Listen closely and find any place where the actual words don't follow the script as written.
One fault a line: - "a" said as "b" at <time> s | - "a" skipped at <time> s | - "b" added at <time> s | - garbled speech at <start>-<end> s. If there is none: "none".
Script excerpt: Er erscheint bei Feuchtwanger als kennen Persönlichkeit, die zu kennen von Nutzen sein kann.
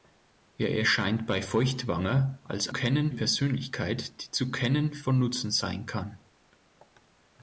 none